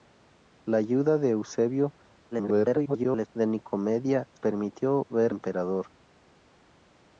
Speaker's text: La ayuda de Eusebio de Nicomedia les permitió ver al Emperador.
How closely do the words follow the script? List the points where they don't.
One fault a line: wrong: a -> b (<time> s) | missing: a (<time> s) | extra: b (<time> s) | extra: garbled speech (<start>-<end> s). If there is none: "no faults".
extra: garbled speech (2.3-3.3 s)
missing: les (4.3 s)
missing: al (5.3 s)